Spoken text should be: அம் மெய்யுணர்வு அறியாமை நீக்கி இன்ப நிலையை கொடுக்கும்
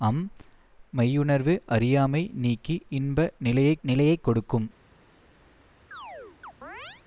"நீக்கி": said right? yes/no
yes